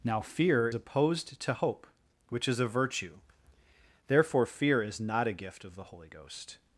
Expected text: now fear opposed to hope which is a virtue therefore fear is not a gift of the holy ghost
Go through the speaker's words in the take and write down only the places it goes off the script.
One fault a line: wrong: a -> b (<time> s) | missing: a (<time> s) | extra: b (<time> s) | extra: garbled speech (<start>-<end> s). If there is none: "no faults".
no faults